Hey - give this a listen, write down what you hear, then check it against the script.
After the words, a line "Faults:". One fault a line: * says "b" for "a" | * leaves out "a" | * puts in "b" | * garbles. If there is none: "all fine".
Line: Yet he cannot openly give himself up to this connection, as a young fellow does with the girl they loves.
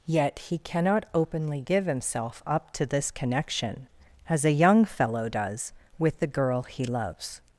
Yet he cannot openly give himself up to this connection, as a young fellow does with the girl he loves.
Faults:
* says "he" for "they"